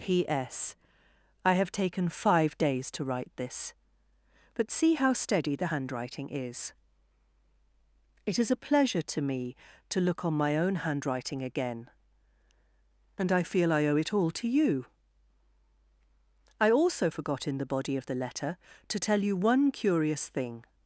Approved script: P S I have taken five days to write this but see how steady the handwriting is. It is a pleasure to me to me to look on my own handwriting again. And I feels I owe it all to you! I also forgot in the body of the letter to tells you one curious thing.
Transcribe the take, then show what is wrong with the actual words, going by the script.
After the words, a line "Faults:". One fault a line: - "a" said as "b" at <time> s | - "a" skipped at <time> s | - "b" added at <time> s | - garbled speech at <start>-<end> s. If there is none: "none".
P S I have taken five days to write this but see how steady the handwriting is. It is a pleasure to me to look on my own handwriting again. And I feel I owe it all to you! I also forgot in the body of the letter to tell you one curious thing.
Faults:
- "me to" skipped at 10.0 s
- "feels" said as "feel" at 13.4 s
- "tells" said as "tell" at 19.0 s